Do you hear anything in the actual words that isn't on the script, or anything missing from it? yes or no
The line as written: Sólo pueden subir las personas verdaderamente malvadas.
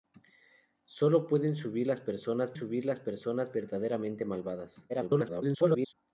yes